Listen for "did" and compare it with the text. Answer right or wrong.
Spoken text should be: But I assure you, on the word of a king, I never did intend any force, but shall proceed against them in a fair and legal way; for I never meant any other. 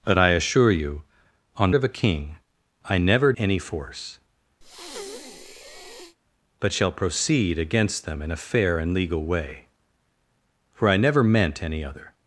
wrong